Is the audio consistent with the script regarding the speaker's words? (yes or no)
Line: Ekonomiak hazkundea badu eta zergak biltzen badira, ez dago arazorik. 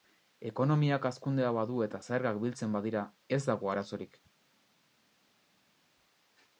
yes